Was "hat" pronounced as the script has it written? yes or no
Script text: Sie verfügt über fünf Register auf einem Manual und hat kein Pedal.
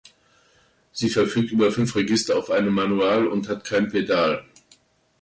yes